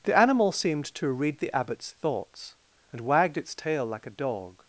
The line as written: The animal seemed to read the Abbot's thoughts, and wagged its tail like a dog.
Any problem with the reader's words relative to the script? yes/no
no